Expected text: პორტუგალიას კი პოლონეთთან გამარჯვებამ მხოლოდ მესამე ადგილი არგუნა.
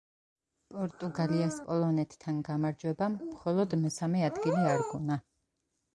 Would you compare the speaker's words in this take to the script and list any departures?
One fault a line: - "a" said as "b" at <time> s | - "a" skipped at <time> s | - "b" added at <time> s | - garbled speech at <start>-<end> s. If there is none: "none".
- "კი" skipped at 1.6 s